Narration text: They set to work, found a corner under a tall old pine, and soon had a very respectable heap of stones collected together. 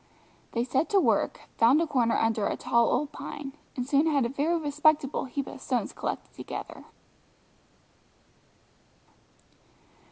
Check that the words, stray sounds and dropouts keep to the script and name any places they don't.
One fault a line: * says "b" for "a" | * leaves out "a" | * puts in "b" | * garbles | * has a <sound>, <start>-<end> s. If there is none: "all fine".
all fine